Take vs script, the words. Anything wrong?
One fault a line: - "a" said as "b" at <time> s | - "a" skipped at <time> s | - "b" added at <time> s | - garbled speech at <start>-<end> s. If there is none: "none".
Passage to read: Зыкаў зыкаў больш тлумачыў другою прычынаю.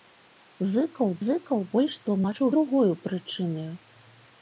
none